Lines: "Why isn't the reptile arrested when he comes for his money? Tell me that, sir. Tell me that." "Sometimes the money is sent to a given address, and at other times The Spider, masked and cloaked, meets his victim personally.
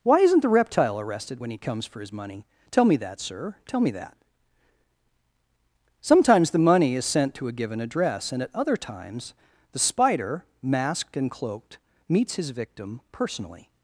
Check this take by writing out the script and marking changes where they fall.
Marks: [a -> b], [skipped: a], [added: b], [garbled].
"Why isn't the reptile arrested when he comes for his money? Tell me that, sir. Tell me that." "Sometimes the money is sent to a given address, and at other times The Spider, masked and cloaked, meets his victim personally.